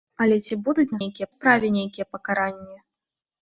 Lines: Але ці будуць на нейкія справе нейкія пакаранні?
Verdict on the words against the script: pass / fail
pass